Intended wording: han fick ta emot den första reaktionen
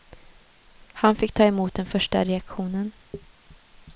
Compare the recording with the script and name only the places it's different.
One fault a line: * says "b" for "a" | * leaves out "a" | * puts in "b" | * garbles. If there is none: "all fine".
all fine